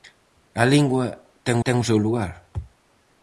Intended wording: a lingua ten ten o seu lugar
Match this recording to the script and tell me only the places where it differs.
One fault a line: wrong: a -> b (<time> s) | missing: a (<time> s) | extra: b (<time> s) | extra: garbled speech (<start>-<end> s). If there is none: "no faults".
no faults